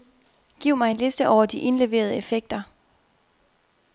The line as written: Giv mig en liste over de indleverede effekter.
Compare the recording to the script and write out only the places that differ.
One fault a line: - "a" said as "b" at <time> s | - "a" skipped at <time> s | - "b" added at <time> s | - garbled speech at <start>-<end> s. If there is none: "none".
none